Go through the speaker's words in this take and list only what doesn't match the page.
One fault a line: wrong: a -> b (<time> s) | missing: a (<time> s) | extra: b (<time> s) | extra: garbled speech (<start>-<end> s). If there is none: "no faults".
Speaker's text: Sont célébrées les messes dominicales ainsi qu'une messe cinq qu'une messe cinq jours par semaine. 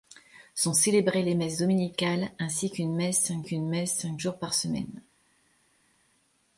no faults